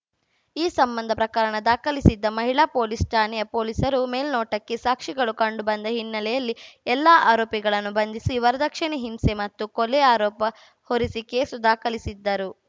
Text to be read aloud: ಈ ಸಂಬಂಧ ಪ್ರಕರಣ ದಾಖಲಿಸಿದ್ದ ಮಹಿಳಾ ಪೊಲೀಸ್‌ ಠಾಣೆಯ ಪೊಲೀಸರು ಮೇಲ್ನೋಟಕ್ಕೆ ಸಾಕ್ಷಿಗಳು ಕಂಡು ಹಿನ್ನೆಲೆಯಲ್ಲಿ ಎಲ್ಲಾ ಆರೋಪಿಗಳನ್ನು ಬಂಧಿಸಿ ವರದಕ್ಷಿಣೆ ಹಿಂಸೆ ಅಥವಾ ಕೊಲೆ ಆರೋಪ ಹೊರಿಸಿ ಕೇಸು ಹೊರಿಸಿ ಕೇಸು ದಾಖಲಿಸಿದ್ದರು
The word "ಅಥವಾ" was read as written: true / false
false